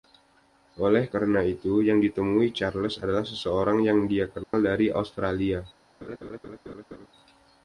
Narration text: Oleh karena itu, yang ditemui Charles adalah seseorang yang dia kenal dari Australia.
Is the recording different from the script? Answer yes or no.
no